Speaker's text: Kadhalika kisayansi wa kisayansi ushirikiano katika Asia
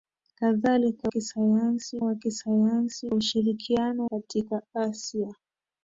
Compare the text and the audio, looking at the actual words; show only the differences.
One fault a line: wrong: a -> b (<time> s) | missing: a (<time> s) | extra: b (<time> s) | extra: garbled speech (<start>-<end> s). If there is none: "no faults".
no faults